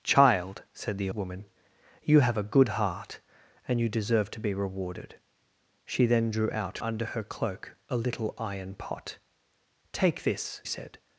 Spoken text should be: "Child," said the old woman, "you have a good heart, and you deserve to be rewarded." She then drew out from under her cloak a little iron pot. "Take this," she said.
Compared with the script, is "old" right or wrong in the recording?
wrong